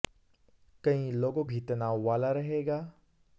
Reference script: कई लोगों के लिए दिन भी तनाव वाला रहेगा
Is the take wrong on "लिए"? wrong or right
wrong